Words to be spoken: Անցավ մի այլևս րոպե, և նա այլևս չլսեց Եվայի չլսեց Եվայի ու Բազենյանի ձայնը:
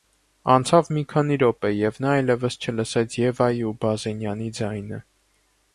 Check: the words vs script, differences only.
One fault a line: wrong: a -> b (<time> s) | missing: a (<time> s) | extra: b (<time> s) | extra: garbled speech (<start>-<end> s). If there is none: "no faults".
wrong: այլևս -> քանի (1.1 s)
missing: չլսեց Եվայի (3.6 s)